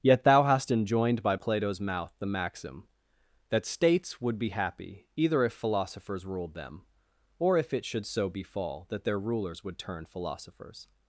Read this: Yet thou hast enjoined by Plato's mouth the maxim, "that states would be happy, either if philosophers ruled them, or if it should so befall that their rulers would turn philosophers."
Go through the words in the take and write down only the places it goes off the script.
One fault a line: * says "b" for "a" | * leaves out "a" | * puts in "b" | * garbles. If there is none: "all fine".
all fine